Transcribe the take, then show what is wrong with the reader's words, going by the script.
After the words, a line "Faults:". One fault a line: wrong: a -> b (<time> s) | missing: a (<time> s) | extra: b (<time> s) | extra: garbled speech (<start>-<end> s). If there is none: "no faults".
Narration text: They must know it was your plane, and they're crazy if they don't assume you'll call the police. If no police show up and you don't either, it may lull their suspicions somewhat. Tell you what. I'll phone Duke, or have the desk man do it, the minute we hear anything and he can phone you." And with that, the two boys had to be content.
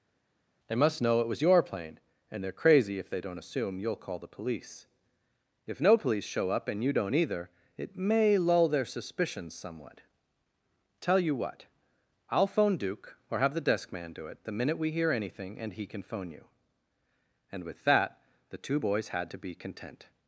They must know it was your plane, and they're crazy if they don't assume you'll call the police. If no police show up and you don't either, it may lull their suspicions somewhat. Tell you what. I'll phone Duke, or have the desk man do it, the minute we hear anything and he can phone you." And with that, the two boys had to be content.
Faults:
no faults